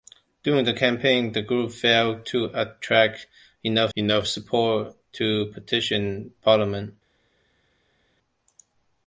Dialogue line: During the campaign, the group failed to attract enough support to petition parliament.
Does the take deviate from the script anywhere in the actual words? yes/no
yes